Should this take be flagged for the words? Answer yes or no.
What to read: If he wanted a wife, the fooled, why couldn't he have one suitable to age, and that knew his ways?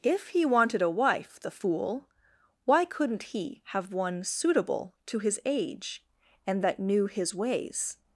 yes